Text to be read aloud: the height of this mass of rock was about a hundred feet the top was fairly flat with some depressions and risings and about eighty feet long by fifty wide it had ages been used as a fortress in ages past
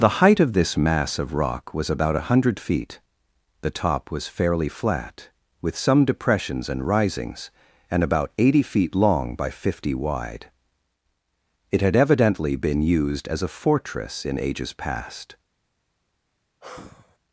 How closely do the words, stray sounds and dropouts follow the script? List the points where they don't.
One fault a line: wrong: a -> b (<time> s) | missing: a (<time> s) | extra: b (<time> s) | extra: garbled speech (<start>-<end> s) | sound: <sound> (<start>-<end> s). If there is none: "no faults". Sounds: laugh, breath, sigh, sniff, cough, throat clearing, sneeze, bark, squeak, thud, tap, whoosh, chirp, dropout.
wrong: ages -> evidently (11.9 s)
sound: sigh (16.6-17.2 s)